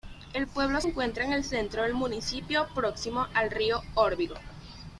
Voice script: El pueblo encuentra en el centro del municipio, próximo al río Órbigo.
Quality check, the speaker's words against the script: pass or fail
pass